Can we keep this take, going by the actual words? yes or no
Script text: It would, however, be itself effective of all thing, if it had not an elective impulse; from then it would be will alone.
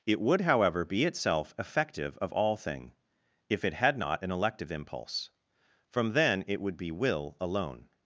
yes